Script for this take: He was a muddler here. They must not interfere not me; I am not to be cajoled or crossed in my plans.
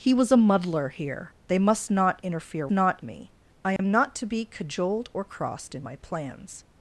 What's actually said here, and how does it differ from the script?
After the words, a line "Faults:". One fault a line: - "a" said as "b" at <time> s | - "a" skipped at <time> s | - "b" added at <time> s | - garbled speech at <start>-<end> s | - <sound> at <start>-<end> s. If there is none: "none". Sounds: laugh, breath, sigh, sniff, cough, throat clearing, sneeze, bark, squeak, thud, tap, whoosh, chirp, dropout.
He was a muddler here. They must not interfere not me; I am not to be cajoled or crossed in my plans.
Faults:
- dropout at 3.8-3.8 s